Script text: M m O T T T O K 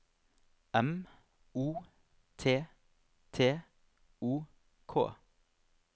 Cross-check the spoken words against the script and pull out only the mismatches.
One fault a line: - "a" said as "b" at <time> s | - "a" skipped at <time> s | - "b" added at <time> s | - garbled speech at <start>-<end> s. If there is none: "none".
- "m" skipped at 1.1 s
- "T" skipped at 3.6 s